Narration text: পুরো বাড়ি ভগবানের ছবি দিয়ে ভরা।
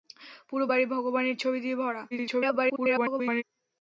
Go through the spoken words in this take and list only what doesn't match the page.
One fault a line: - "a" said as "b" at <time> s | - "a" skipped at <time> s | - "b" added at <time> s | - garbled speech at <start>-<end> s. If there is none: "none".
- garbled speech at 2.1-3.4 s